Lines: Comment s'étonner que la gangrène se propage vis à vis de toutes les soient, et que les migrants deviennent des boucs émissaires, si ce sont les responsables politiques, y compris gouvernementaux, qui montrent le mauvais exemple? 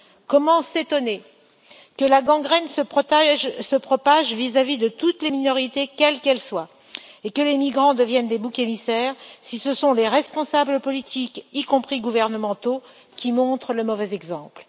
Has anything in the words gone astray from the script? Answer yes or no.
yes